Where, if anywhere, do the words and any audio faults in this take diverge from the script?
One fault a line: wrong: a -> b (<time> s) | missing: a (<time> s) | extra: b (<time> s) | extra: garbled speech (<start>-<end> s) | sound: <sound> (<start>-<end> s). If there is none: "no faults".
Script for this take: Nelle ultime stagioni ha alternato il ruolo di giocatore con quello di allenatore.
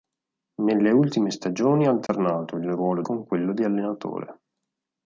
sound: dropout (2.1-2.1 s)
missing: di giocatore (3.0 s)